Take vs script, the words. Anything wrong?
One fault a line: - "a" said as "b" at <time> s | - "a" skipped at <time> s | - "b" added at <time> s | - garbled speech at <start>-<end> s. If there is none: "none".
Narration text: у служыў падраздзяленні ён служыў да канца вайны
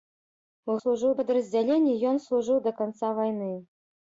none